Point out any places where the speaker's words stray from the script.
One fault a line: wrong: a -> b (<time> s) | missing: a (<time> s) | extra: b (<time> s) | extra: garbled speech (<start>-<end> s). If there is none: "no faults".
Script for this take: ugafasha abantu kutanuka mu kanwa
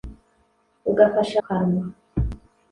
missing: abantu kutanuka mu (1.4 s)